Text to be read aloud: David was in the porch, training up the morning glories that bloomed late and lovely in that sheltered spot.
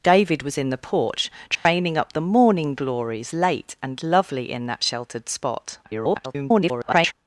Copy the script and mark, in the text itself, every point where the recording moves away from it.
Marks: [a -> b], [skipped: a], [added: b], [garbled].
David was in the porch, training up the morning glories [skipped: that bloomed] late and lovely in that sheltered spot. [garbled]